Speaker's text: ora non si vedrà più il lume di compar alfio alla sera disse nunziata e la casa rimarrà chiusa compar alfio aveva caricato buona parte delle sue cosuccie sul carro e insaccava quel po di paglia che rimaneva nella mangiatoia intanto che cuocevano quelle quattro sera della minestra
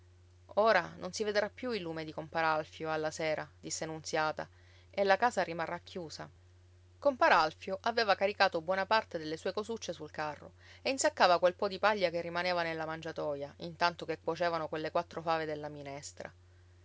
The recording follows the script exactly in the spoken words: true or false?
false